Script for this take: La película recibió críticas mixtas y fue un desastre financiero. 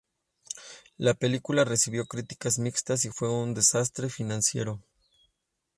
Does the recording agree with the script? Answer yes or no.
yes